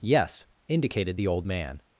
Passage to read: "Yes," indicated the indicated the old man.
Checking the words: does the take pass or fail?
fail